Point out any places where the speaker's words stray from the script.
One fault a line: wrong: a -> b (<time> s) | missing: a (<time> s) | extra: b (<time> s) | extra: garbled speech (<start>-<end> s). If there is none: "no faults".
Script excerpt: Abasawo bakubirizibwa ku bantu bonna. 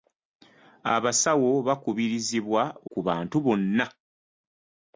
no faults